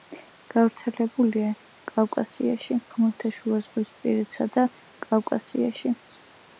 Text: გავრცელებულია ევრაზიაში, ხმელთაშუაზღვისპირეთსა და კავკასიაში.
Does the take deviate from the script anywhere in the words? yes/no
yes